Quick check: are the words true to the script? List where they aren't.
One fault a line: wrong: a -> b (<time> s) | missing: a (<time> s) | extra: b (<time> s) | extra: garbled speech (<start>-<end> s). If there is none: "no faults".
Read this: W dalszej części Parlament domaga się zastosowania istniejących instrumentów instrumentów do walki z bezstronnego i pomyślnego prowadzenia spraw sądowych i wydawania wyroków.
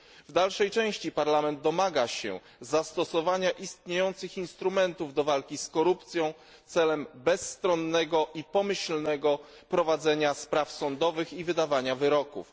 missing: instrumentów (5.1 s)
extra: korupcją celem (5.7 s)